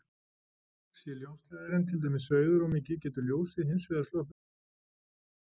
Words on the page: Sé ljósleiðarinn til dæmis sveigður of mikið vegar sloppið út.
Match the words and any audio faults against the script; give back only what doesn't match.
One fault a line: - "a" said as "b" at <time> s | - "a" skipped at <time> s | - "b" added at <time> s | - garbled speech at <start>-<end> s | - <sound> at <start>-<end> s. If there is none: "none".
- "getur ljósið hins" added at 3.1 s